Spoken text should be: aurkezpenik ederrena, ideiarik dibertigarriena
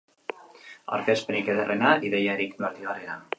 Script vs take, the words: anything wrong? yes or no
no